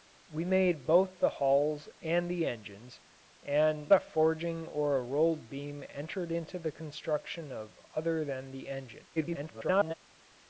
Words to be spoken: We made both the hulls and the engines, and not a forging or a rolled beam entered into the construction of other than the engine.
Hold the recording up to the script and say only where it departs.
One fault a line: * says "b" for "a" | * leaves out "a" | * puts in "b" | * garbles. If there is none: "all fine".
* leaves out "not"
* garbles